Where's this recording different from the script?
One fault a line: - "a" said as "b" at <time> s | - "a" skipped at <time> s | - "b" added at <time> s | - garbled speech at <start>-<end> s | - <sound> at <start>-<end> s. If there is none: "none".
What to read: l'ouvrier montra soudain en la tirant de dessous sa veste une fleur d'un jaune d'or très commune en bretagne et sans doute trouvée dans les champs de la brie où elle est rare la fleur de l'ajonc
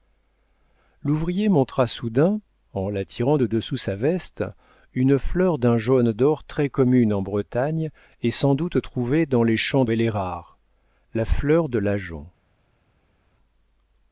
- "la brie où" skipped at 9.9 s